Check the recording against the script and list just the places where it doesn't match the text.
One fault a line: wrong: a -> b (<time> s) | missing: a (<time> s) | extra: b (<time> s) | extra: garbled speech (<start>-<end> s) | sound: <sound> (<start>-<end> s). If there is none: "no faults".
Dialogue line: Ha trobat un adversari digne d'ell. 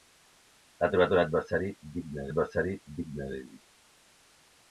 extra: adversari digne (2.3 s)